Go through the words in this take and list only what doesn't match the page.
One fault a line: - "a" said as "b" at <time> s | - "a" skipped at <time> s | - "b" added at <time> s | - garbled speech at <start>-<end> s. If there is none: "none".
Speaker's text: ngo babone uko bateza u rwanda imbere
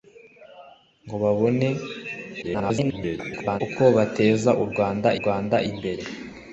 - garbled speech at 2.4-3.6 s
- "rwanda" added at 5.2 s